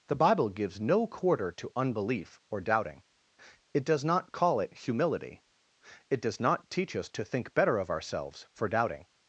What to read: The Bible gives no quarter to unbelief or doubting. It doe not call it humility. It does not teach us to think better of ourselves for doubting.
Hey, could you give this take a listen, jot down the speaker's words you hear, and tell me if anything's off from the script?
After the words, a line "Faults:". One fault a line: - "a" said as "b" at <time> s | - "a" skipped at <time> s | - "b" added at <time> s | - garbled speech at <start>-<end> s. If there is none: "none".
The Bible gives no quarter to unbelief or doubting. It does not call it humility. It does not teach us to think better of ourselves for doubting.
Faults:
- "doe" said as "does" at 3.9 s